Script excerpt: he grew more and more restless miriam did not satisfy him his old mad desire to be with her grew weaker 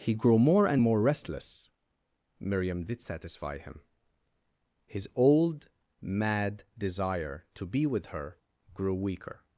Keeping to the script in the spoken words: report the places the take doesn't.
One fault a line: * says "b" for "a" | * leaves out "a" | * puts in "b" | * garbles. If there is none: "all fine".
* leaves out "not"